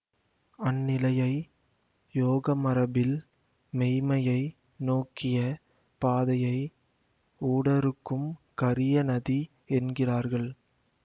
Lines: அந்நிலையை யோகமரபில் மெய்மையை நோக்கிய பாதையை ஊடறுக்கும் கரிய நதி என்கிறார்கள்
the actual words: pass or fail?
pass